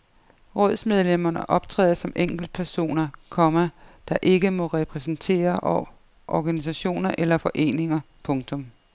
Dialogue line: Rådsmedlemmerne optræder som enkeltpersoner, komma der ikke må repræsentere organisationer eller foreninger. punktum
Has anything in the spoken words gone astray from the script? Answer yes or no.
no